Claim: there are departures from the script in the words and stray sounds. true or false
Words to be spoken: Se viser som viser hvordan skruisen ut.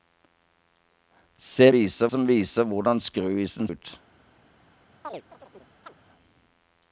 true